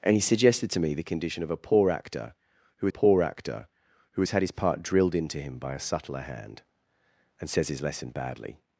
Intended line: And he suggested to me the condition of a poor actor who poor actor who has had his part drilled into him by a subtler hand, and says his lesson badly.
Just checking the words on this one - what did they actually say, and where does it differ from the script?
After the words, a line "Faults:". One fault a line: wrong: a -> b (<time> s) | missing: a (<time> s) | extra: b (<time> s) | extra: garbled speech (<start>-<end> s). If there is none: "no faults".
And he suggested to me the condition of a poor actor who poor actor who has had his part drilled into him by a subtler hand, and says his lesson badly.
Faults:
no faults